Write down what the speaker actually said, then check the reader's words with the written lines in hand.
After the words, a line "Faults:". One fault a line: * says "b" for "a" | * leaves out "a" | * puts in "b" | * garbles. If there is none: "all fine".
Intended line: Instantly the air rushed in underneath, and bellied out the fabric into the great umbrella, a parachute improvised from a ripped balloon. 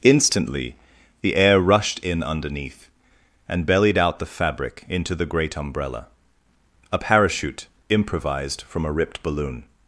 Instantly the air rushed in underneath, and bellied out the fabric into the great umbrella, a parachute improvised from a ripped balloon.
Faults:
all fine